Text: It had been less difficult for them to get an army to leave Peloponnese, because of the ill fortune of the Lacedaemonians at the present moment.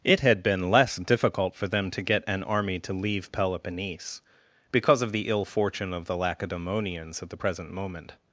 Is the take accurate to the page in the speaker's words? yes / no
yes